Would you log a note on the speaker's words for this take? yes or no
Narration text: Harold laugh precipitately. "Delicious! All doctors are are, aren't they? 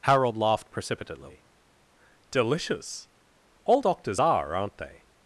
yes